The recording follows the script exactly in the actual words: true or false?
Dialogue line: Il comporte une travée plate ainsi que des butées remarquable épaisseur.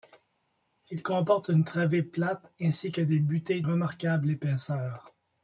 true